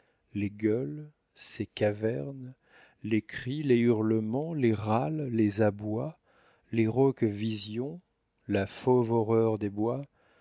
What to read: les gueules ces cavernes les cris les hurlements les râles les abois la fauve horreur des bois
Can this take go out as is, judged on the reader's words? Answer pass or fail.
fail